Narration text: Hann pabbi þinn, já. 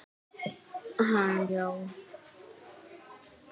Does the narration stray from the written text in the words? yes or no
yes